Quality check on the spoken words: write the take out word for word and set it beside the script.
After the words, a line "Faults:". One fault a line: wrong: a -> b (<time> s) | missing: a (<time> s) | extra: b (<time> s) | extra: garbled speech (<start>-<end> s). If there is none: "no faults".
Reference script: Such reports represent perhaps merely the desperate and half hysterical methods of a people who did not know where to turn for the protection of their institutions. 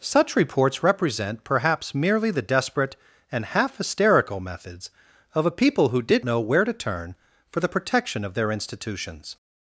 Such reports represent perhaps merely the desperate and half hysterical methods of a people who did know where to turn for the protection of their institutions.
Faults:
missing: not (6.2 s)